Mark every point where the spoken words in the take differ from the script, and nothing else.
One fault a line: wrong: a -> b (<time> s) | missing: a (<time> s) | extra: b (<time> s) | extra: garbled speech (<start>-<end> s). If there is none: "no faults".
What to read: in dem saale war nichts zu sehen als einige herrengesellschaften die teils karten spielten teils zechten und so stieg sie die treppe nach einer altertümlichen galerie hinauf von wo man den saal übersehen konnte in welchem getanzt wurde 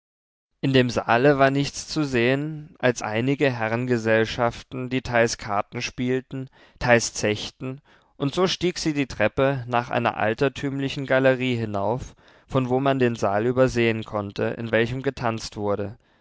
no faults